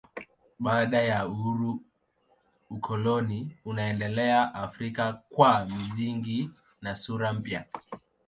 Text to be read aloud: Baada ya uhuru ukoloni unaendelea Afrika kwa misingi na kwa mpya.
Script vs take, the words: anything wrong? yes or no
yes